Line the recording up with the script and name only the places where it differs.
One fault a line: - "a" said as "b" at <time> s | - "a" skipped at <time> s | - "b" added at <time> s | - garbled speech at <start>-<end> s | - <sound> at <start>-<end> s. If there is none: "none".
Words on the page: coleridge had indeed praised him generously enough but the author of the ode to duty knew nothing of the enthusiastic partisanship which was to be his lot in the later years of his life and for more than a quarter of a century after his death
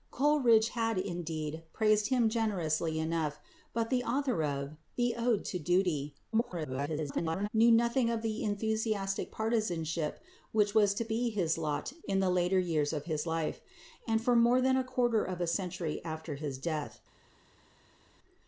- garbled speech at 6.3-7.5 s